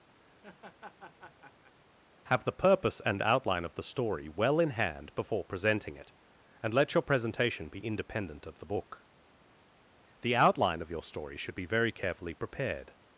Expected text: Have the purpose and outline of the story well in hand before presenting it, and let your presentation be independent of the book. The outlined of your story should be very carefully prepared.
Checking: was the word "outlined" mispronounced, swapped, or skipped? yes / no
yes